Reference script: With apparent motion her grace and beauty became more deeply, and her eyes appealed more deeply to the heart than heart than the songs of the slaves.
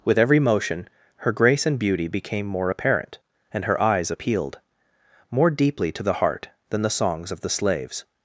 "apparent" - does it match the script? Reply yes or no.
no